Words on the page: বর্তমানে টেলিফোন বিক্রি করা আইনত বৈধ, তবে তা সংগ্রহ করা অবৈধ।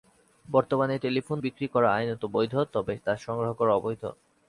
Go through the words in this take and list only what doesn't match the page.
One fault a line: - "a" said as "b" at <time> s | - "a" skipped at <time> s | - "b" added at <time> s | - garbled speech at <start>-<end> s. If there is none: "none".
none